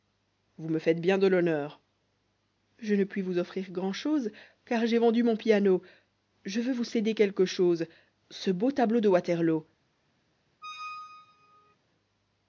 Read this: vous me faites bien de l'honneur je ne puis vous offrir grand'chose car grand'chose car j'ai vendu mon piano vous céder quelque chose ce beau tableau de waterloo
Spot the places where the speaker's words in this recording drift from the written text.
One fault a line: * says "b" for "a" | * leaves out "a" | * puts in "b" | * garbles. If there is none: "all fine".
* leaves out "grand'chose car"
* puts in "je veux"